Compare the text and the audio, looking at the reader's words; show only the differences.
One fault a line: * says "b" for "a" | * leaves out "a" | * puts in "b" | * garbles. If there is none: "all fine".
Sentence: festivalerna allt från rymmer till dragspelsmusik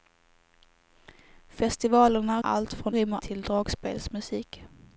all fine